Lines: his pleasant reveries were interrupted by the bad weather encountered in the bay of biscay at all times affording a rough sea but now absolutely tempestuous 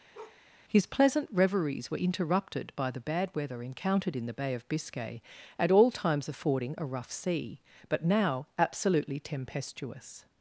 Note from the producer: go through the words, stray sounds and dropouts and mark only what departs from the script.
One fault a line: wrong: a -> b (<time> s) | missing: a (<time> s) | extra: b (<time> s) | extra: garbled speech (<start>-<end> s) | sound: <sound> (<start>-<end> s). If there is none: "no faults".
sound: bark (0.1-0.4 s)